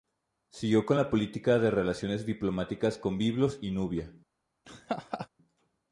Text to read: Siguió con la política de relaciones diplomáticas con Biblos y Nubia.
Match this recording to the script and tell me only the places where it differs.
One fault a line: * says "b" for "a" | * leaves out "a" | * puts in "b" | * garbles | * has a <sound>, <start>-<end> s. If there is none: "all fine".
* has a laugh, 4.6-5.3 s